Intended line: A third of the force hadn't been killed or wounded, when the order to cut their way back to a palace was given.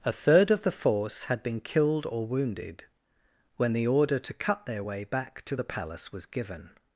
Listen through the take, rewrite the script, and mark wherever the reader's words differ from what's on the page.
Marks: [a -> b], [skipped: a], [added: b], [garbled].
A third of the force [hadn't -> had] been killed or wounded, when the order to cut their way back to [a -> the] palace was given.